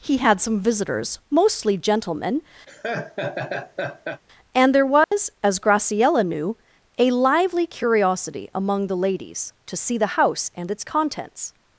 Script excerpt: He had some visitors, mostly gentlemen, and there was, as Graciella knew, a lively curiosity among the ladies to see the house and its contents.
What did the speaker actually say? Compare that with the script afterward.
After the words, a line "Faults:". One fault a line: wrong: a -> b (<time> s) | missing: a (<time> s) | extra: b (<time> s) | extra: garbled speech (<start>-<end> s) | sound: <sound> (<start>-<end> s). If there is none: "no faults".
He had some visitors, mostly gentlemen, and there was, as Graciella knew, a lively curiosity among the ladies to see the house and its contents.
Faults:
sound: laugh (2.7-4.2 s)
sound: dropout (5.0-5.1 s)